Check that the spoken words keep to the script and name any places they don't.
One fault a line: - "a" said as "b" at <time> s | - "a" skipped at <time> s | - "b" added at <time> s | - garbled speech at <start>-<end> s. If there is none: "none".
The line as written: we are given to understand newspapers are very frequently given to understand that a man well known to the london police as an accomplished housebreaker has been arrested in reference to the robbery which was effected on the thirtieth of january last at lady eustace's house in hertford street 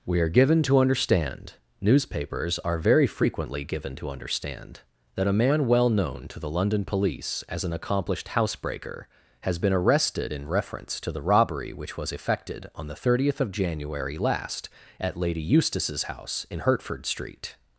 none